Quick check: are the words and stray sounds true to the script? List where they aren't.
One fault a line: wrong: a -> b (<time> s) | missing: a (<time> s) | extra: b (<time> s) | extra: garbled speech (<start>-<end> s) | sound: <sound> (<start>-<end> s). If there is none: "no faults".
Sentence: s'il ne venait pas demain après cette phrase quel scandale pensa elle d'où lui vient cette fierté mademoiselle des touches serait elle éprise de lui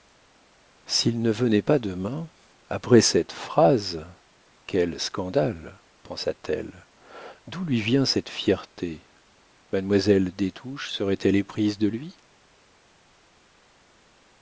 extra: t (6.3 s)